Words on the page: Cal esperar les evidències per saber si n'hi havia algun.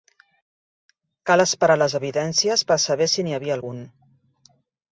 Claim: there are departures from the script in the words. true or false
false